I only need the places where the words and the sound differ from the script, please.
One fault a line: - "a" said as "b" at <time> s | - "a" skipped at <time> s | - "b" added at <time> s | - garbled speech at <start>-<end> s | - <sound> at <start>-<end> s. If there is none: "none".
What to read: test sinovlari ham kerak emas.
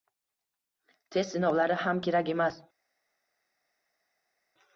none